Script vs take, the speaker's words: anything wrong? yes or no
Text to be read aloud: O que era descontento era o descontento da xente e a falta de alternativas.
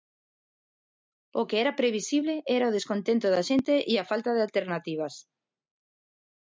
yes